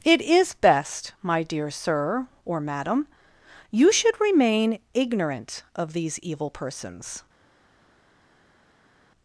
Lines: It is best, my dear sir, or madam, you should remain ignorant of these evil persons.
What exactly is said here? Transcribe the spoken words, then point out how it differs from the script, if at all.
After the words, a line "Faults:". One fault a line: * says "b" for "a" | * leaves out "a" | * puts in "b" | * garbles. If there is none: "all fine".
It is best, my dear sir, or madam, you should remain ignorant of these evil persons.
Faults:
all fine